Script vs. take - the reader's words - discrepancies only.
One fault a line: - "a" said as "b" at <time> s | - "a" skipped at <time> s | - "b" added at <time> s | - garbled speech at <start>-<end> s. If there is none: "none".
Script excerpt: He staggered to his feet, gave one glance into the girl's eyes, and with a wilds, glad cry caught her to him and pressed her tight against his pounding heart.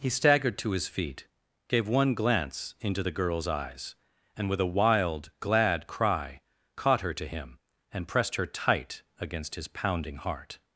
- "wilds" said as "wild" at 4.6 s